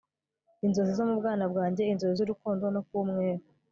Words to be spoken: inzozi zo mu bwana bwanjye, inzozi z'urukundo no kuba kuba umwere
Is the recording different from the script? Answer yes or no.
yes